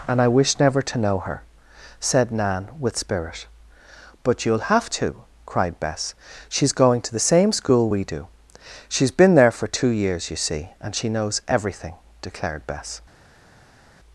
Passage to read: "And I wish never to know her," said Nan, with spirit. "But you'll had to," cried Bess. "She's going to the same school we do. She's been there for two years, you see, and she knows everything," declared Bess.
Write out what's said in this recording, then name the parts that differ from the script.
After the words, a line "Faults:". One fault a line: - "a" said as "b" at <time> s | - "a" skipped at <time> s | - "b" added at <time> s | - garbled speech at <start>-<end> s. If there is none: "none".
"And I wish never to know her," said Nan, with spirit. "But you'll have to," cried Bess. "She's going to the same school we do. She's been there for two years, you see, and she knows everything," declared Bess.
Faults:
- "had" said as "have" at 4.7 s